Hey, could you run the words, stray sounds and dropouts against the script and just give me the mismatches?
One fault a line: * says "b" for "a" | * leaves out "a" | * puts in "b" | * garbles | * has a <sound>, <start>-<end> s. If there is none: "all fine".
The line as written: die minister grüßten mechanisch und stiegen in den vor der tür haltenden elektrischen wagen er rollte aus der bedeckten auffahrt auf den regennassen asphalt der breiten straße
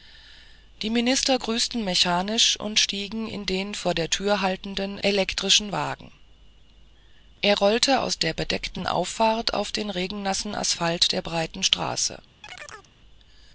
* has a chirp, 12.4-12.9 s